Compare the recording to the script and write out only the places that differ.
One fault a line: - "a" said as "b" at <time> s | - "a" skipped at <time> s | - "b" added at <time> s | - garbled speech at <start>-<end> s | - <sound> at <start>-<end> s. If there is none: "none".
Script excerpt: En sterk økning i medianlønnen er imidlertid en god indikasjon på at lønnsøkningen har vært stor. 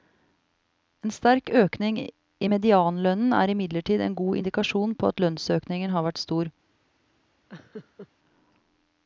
- laugh at 7.5-8.1 s